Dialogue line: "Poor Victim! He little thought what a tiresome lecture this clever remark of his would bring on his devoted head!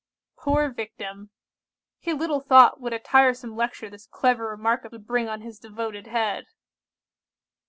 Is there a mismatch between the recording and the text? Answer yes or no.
yes